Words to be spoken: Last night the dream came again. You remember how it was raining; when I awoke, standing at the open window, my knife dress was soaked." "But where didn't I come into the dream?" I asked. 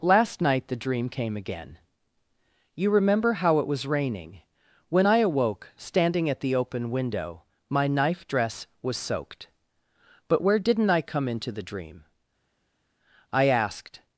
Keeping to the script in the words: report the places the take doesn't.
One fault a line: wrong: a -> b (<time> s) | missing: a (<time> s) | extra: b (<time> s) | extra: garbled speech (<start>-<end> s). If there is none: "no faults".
no faults